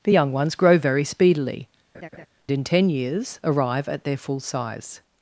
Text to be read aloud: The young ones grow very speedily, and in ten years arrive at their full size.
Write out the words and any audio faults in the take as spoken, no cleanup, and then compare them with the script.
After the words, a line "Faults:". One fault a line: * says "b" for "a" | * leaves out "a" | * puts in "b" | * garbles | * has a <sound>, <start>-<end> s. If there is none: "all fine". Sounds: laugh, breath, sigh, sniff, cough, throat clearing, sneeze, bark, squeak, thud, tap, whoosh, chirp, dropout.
The young ones grow very speedily, in ten years arrive at their full size.
Faults:
* leaves out "and"
* has a laugh, 1.9-2.3 s